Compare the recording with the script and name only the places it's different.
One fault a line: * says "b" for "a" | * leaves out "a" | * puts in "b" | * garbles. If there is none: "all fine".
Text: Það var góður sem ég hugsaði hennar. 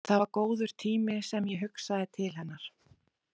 * puts in "tími"
* puts in "til"